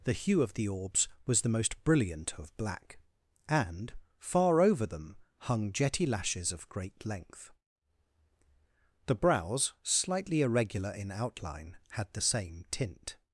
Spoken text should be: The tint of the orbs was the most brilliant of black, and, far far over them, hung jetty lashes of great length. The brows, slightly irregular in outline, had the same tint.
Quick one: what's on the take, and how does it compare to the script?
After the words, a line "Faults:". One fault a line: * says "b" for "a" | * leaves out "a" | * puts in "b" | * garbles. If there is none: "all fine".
The hue of the orbs was the most brilliant of black, and, far over them, hung jetty lashes of great length. The brows, slightly irregular in outline, had the same tint.
Faults:
* says "hue" for "tint"
* leaves out "far"